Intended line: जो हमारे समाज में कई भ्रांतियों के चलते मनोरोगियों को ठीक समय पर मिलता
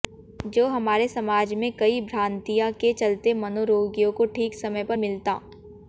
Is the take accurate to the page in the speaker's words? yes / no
yes